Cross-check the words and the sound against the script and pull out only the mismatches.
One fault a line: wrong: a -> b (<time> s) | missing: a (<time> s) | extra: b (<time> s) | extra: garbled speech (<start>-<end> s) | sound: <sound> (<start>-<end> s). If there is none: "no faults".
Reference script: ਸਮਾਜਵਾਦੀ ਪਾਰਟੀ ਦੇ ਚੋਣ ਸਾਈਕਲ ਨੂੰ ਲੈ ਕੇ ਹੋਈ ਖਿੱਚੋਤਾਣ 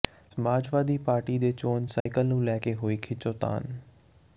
sound: dropout (2.0-2.1 s)